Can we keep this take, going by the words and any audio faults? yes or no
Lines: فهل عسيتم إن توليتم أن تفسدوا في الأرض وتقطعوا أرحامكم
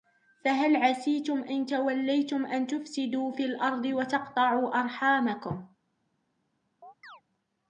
no